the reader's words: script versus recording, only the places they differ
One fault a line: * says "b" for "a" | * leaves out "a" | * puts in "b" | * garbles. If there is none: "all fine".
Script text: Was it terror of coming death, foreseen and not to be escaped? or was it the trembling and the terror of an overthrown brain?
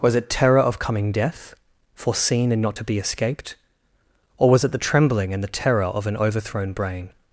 all fine